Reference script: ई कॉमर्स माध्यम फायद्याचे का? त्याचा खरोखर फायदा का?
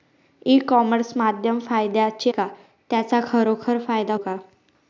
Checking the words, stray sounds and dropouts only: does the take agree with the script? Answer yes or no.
yes